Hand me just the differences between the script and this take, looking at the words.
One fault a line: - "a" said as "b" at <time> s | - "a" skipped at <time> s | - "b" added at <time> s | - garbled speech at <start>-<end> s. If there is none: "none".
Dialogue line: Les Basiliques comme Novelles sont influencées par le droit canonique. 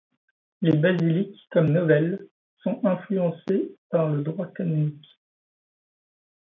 none